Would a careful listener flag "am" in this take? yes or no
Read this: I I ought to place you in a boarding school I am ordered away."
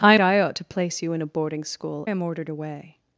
no